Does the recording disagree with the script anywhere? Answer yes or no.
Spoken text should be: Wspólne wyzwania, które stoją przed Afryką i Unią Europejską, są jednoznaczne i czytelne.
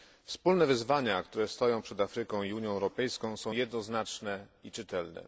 no